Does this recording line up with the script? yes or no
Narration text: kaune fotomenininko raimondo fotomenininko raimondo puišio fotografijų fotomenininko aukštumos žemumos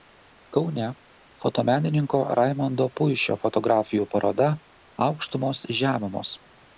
no